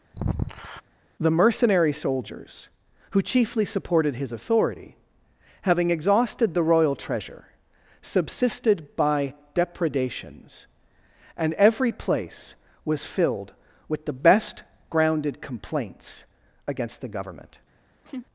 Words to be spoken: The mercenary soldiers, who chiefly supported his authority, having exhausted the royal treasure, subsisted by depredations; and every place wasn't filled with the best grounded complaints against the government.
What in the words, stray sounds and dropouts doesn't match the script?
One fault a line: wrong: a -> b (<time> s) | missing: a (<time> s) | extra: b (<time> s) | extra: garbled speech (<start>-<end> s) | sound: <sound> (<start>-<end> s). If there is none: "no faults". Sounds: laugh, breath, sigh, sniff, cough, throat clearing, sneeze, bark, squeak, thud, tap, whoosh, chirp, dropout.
sound: sigh (0.1-0.8 s)
wrong: wasn't -> was (12.8 s)
sound: laugh (18.0-18.3 s)